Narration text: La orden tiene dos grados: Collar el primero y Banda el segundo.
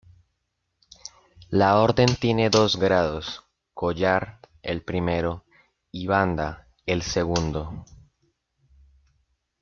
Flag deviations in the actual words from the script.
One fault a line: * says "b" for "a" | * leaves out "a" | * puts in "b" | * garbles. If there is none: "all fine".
all fine